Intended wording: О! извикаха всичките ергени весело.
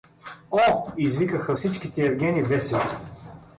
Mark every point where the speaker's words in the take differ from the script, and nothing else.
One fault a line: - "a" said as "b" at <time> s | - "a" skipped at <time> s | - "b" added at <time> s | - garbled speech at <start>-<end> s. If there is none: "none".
none